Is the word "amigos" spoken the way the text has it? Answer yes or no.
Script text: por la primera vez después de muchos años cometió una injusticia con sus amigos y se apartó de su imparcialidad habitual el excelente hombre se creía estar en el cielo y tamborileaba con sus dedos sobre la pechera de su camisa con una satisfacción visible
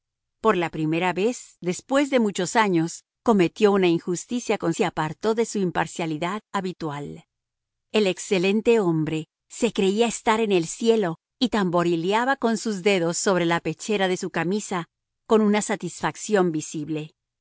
no